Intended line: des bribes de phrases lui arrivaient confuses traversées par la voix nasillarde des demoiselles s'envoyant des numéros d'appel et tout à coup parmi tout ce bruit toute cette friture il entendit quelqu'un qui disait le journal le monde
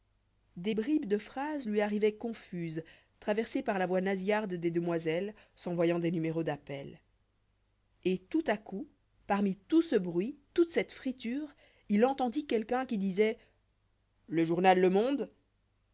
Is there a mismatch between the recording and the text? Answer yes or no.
no